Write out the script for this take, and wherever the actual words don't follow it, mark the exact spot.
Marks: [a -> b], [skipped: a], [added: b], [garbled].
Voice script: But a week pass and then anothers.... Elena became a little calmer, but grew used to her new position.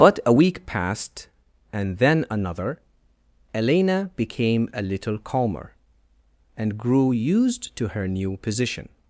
But a week [pass -> passed] and then [anothers.... -> another] Elena became a little calmer, [but -> and] grew used to her new position.